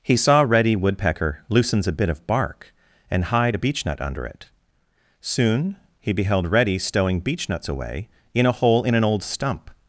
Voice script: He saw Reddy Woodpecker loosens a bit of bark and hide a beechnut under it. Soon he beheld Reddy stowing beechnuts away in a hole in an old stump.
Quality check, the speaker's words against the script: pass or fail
pass